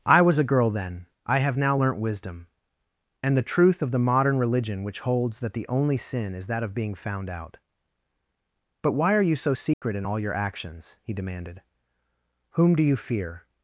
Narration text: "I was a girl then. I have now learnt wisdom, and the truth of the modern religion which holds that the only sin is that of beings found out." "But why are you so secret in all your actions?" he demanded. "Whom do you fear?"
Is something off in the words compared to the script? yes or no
yes